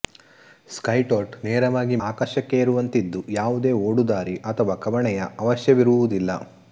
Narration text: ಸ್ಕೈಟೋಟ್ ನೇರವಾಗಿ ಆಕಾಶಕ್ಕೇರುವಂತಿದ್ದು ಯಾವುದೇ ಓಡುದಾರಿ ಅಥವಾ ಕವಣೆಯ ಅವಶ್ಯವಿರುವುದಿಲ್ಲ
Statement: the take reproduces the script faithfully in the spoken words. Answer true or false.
true